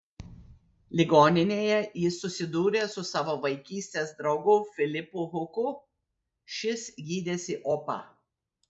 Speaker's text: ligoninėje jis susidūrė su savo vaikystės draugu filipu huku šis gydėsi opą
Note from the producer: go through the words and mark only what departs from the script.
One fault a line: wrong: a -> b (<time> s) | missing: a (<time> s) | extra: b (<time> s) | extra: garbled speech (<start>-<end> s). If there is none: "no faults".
no faults